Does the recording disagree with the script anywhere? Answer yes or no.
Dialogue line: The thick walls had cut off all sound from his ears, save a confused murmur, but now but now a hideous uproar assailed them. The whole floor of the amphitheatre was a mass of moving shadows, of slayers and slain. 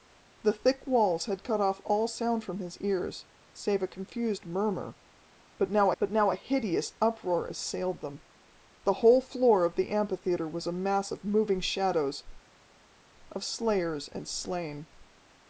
no